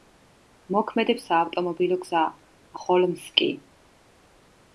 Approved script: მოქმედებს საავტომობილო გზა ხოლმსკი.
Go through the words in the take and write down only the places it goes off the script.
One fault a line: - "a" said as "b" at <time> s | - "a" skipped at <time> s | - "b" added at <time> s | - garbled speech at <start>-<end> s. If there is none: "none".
none